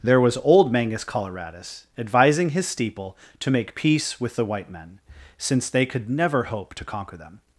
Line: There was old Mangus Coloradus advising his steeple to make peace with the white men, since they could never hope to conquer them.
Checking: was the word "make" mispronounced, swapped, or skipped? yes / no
no